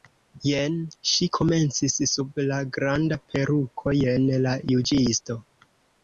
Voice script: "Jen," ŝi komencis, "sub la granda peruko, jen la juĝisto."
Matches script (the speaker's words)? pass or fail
pass